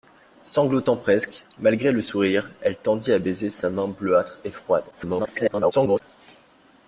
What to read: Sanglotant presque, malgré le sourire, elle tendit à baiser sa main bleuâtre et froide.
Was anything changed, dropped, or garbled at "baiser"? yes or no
no